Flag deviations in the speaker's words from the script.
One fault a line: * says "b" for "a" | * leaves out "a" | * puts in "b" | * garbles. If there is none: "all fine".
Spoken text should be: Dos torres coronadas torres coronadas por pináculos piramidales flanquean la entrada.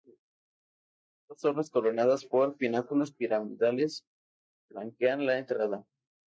* leaves out "torres coronadas"